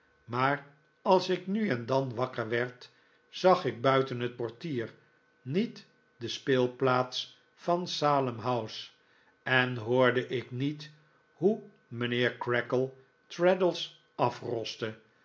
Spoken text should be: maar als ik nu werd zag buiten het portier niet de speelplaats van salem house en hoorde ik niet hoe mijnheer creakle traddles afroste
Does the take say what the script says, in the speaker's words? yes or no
no